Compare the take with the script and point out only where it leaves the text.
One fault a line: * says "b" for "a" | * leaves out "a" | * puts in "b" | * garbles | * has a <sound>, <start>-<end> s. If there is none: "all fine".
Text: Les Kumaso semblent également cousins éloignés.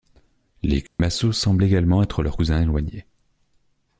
* has a dropout, 0.9-1.0 s
* puts in "être leurs"